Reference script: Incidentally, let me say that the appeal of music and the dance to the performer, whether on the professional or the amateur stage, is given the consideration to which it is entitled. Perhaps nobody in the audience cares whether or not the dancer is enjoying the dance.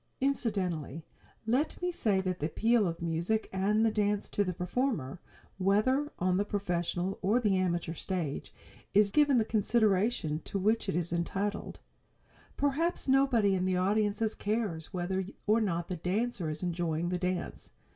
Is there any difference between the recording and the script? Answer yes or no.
no